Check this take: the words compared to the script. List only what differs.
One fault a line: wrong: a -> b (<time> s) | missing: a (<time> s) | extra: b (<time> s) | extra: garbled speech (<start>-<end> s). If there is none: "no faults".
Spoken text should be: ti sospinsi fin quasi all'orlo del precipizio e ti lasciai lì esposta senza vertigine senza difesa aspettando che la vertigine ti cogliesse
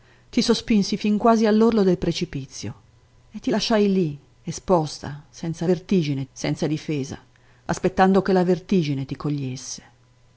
no faults